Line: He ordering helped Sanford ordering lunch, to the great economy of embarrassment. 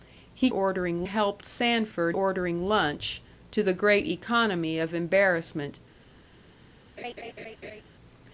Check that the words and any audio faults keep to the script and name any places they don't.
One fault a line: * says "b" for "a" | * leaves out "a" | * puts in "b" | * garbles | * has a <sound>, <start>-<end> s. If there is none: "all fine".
* has a laugh, 7.0-7.8 s